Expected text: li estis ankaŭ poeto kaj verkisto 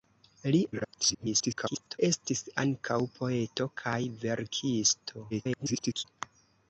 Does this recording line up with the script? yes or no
no